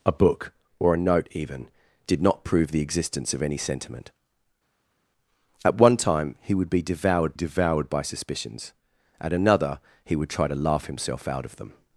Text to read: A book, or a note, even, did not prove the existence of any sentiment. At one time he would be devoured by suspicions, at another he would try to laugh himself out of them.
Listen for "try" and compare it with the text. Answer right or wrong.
right